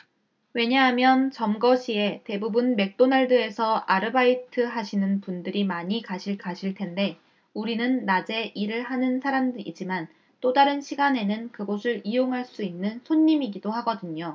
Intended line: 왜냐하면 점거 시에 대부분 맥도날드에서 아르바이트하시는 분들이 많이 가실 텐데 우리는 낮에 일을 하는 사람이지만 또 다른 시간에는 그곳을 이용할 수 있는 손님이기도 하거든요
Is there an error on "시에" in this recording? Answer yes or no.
no